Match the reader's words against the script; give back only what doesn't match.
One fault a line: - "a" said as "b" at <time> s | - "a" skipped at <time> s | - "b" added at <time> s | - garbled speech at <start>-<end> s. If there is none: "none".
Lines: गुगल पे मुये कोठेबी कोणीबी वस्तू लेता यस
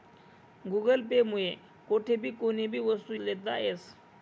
none